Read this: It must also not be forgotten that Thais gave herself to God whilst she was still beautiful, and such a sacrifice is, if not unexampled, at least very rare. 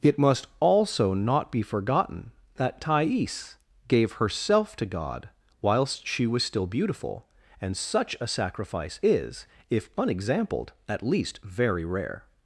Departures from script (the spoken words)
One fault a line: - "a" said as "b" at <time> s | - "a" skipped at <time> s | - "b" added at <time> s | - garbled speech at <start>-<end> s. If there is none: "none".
- "not" skipped at 9.9 s